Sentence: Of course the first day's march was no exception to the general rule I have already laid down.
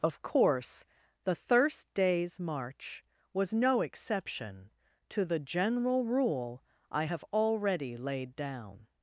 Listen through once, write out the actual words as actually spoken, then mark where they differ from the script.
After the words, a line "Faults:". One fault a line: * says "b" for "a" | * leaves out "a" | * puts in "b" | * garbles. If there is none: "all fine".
Of course the thirst day's march was no exception to the general rule I have already laid down.
Faults:
* says "thirst" for "first"